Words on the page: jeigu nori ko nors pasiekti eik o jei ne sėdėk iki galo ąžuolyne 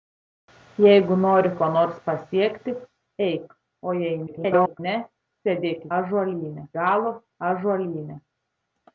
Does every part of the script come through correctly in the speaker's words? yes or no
no